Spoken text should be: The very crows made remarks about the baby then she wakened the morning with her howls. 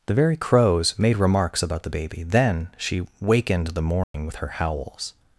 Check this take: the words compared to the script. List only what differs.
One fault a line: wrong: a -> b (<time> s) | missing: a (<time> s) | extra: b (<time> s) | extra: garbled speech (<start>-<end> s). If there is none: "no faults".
no faults